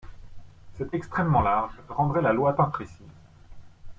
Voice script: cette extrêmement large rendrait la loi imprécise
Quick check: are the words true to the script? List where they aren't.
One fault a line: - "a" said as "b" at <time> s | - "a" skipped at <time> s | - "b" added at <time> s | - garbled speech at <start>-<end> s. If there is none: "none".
none